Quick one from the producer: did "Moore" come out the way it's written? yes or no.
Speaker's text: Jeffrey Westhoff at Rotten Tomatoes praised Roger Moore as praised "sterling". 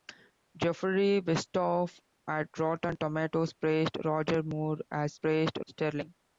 yes